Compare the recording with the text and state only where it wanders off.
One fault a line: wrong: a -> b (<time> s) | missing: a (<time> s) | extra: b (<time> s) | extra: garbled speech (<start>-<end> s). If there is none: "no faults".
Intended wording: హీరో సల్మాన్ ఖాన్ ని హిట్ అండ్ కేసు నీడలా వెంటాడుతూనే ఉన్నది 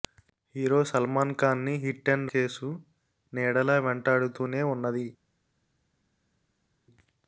no faults